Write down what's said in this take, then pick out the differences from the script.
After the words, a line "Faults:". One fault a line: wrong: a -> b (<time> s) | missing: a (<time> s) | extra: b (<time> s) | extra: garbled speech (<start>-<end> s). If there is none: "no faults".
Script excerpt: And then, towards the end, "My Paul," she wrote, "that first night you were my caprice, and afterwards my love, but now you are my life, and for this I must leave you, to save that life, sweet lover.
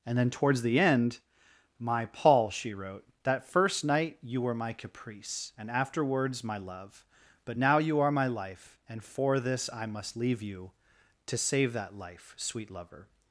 And then, towards the end, "My Paul," she wrote, "that first night you were my caprice, and afterwards my love, but now you are my life, and for this I must leave you, to save that life, sweet lover.
Faults:
no faults